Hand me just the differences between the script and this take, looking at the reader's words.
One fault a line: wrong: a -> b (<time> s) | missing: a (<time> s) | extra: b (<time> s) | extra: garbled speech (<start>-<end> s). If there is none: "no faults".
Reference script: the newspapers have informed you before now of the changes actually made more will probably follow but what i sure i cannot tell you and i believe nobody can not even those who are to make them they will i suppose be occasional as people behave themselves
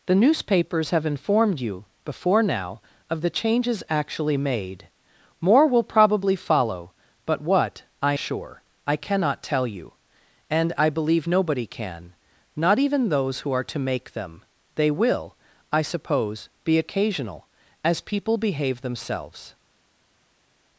no faults